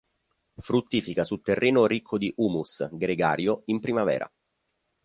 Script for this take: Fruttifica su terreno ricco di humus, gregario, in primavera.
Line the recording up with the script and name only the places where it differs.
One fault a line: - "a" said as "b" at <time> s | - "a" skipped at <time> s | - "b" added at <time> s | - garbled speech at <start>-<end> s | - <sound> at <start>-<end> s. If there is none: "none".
none